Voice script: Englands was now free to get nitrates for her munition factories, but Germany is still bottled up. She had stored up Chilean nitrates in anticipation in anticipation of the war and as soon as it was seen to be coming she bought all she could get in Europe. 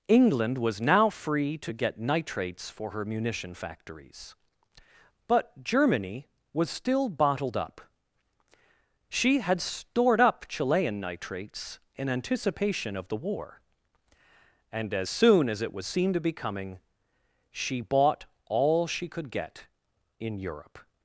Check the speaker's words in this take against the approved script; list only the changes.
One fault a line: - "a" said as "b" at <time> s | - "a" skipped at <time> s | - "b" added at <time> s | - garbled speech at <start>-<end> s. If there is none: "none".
- "Englands" said as "England" at 0.1 s
- "is" said as "was" at 6.5 s
- "in anticipation" skipped at 12.9 s